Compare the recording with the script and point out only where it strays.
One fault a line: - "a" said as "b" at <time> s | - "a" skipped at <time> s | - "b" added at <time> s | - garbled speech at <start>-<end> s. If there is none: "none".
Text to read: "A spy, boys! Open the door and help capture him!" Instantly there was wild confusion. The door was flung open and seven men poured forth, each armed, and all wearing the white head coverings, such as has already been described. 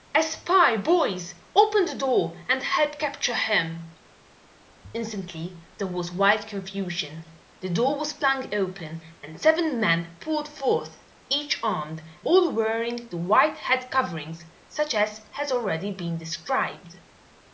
- "and" skipped at 12.0 s